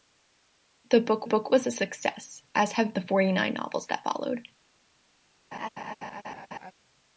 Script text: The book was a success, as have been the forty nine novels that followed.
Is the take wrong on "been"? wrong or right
wrong